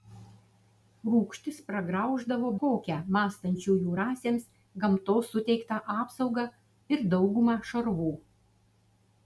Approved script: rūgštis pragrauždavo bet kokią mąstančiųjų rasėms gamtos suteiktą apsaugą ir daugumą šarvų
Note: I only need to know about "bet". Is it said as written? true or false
false